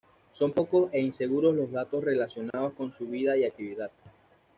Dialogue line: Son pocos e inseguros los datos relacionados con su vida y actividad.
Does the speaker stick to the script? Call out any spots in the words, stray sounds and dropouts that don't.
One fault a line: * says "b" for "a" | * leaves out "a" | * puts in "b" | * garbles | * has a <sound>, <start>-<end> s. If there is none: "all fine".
* has a dropout, 2.5-2.5 s